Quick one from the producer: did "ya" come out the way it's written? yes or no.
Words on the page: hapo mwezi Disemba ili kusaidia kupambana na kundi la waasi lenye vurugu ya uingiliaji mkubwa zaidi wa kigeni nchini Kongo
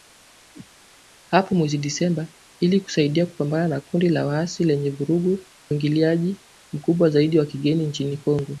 no